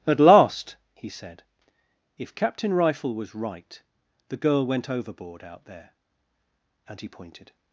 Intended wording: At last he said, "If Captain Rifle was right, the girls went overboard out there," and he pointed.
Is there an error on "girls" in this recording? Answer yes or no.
yes